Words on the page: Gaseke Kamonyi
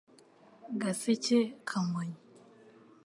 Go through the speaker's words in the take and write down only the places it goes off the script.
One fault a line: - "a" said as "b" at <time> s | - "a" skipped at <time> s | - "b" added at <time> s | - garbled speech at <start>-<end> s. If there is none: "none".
none